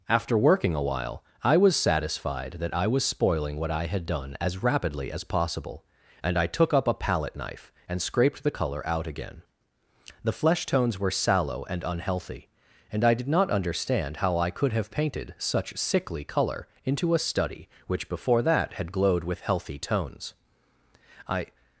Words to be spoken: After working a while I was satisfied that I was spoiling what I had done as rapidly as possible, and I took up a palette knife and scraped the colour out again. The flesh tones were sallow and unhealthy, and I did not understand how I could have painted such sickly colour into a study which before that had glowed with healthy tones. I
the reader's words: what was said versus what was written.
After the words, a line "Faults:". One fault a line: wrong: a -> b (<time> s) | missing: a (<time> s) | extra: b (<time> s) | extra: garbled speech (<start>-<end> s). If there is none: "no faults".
After working a while I was satisfied that I was spoiling what I had done as rapidly as possible, and I took up a palette knife and scraped the colour out again. The flesh tones were sallow and unhealthy, and I did not understand how I could have painted such sickly colour into a study which before that had glowed with healthy tones. I
Faults:
no faults